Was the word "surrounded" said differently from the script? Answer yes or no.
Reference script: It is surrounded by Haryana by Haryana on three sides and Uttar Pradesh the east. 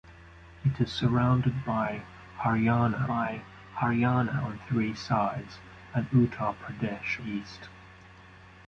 no